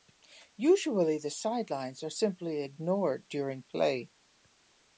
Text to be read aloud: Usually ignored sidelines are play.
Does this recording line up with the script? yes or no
no